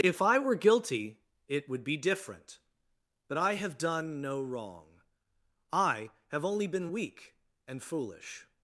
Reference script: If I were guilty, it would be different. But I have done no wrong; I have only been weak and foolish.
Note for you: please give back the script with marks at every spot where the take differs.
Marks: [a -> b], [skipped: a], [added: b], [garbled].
If I were guilty, it would be different. But I have done no wrong; I have only been weak and foolish.